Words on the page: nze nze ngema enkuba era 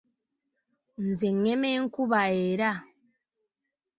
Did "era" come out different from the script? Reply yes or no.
no